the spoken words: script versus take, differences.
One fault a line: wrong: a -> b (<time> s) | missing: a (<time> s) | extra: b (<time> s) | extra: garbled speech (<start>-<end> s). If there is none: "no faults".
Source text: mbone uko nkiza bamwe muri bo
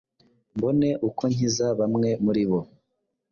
no faults